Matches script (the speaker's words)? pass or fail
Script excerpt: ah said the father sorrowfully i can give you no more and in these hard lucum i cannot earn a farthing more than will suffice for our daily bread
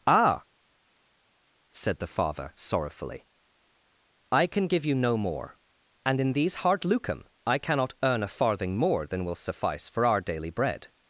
pass